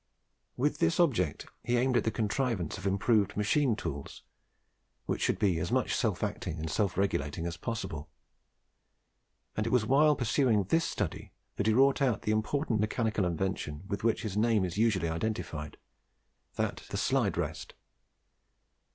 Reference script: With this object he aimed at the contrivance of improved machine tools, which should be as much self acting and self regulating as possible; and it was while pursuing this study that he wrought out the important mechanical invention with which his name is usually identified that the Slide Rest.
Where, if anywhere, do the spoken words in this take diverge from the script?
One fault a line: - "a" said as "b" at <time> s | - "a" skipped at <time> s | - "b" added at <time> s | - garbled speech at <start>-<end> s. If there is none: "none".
none